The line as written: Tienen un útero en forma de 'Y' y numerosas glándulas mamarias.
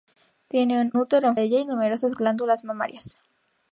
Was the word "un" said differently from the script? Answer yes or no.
yes